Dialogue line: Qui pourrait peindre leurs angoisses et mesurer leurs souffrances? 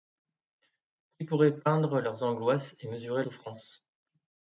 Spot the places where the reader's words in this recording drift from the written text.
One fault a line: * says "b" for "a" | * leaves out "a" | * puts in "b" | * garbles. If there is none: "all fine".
* leaves out "leurs"